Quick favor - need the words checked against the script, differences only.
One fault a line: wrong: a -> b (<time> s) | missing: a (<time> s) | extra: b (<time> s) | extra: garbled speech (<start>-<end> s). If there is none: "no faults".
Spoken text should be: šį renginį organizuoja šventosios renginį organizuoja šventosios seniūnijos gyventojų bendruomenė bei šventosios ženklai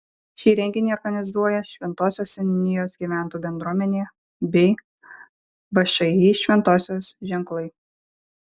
missing: renginį organizuoja šventosios (2.3 s)
extra: všį (5.8 s)